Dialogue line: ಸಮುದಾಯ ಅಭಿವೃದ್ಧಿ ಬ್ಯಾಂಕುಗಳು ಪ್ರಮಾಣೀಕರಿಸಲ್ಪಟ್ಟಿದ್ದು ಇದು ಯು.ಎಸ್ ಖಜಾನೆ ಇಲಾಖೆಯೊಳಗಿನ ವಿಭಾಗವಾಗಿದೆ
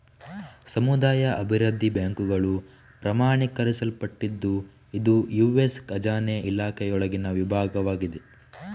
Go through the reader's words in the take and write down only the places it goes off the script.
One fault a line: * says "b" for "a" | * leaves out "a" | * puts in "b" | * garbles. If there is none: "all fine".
all fine